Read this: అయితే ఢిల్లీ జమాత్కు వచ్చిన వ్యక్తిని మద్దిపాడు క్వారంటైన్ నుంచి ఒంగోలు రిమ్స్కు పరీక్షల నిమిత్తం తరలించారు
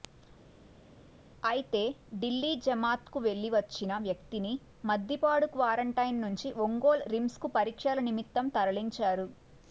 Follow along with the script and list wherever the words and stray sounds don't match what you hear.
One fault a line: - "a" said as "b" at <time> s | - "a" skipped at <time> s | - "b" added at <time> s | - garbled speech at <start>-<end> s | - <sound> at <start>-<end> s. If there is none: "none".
- "వెళ్లి" added at 3.3 s